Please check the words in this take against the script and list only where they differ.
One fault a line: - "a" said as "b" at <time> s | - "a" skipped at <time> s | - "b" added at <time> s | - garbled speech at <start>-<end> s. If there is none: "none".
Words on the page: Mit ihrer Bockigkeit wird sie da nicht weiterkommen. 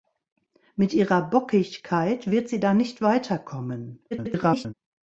- garbled speech at 4.1-4.7 s